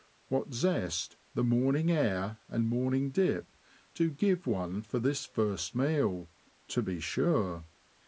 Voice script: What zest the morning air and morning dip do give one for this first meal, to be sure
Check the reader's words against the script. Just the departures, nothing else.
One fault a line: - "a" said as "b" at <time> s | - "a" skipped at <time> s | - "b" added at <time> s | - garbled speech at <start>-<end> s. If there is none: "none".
none